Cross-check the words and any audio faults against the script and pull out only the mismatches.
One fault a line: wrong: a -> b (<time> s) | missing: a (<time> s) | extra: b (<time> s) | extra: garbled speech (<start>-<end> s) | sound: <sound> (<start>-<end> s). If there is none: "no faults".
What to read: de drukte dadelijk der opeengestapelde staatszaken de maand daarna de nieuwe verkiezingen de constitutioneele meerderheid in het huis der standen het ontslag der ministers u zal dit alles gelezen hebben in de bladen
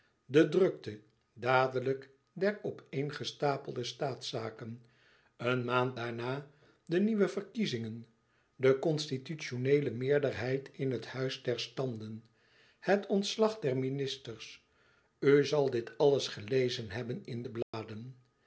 wrong: de -> een (5.4 s)
sound: dropout (17.6-17.7 s)